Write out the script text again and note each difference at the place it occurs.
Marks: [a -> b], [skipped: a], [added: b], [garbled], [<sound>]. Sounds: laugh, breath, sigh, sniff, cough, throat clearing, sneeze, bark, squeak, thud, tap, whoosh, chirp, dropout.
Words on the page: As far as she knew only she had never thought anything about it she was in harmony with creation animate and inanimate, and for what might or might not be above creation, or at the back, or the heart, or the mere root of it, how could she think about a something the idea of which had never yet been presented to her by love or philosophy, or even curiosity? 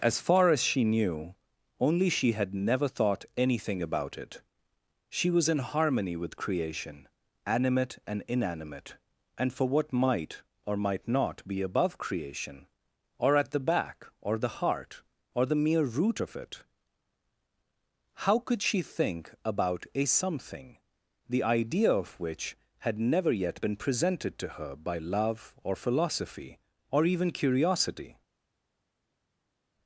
As far as she knew only she had never thought anything about it she was in harmony with creation animate and inanimate, and for what might or might not be above creation, or at the back, or the heart, or the mere root of it, how could she think about a something the idea of which had never yet been presented to her by love or philosophy, or even curiosity?